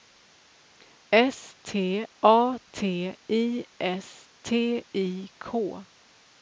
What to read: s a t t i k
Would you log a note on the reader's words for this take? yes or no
yes